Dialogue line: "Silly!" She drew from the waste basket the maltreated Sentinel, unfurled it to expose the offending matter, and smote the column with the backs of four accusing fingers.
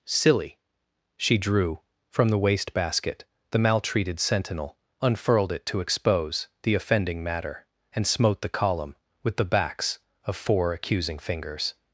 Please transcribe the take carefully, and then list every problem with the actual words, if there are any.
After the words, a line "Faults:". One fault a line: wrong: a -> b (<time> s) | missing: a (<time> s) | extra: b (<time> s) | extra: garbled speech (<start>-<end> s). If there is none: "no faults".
"Silly!" She drew from the waste basket the maltreated Sentinel, unfurled it to expose the offending matter, and smote the column with the backs of four accusing fingers.
Faults:
no faults